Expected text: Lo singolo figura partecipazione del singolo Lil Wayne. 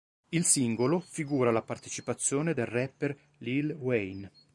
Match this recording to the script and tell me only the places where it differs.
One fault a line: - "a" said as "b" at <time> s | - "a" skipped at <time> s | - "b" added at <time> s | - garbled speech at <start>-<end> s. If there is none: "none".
- "Lo" said as "Il" at 0.3 s
- "la" added at 1.5 s
- "singolo" said as "rapper" at 2.7 s